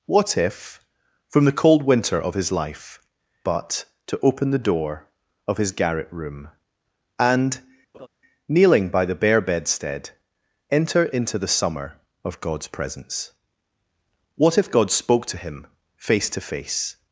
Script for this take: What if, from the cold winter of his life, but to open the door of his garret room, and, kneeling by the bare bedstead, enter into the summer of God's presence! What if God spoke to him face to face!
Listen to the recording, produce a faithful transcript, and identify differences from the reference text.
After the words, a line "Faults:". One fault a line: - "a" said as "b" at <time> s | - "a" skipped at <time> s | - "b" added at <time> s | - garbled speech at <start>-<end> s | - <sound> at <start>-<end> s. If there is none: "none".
What if, from the cold winter of his life, but to open the door of his garret room, and, kneeling by the bare bedstead, enter into the summer of God's presence! What if God spoke to him face to face!
Faults:
- laugh at 7.9-8.1 s